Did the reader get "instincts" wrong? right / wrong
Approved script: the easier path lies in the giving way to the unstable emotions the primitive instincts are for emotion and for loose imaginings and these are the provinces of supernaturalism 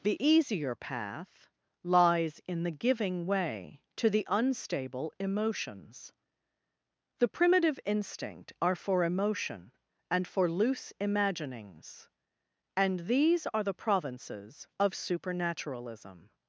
wrong